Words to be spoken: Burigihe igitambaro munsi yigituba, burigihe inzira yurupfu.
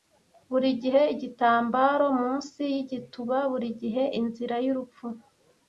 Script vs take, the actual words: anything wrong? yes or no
no